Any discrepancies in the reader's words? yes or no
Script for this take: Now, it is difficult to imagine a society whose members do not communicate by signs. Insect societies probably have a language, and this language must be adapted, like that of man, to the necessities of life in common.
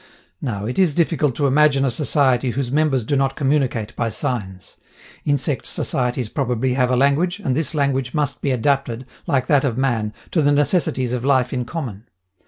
no